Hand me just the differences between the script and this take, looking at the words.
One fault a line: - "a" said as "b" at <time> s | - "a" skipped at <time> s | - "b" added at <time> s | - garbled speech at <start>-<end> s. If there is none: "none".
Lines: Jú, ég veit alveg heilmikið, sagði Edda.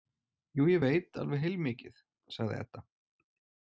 none